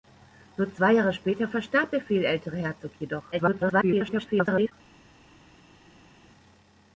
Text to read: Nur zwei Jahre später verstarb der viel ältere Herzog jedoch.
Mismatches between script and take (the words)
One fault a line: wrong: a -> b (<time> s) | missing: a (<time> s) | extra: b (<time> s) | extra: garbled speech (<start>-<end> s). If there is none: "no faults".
extra: garbled speech (3.3-4.7 s)